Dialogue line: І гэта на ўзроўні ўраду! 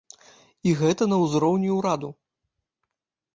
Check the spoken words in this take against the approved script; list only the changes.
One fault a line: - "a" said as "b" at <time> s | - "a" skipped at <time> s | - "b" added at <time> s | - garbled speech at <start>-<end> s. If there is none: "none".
none